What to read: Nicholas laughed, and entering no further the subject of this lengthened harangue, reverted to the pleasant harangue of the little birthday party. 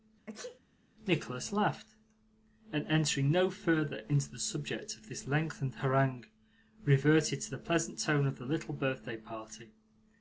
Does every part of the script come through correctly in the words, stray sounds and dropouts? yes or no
no